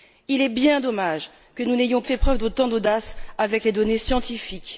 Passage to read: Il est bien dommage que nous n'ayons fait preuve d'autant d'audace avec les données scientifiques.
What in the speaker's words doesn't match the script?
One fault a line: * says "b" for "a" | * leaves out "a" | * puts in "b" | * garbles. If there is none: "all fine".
all fine